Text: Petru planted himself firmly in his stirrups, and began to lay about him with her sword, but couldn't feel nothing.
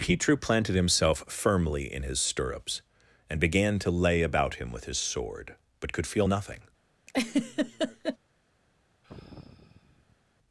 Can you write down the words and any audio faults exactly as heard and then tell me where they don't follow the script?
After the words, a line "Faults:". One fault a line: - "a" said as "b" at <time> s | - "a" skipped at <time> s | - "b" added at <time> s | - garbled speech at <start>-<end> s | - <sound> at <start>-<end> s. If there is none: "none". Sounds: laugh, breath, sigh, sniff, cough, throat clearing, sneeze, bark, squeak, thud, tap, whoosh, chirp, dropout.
Petru planted himself firmly in his stirrups, and began to lay about him with his sword, but could feel nothing.
Faults:
- "her" said as "his" at 4.8 s
- "couldn't" said as "could" at 5.9 s
- laugh at 7.1-8.2 s
- sigh at 9.0-10.2 s